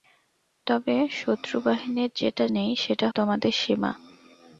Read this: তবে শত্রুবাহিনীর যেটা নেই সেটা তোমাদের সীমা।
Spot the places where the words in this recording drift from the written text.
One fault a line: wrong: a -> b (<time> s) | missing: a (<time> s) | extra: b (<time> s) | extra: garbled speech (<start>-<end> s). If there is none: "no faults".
no faults